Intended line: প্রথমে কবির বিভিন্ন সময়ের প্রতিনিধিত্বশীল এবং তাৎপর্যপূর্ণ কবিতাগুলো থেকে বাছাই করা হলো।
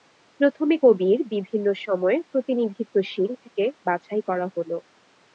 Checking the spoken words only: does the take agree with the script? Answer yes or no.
no